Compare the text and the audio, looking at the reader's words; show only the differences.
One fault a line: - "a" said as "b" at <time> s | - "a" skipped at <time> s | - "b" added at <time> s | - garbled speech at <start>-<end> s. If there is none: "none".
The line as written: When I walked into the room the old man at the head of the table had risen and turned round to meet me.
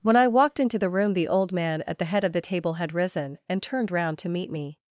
none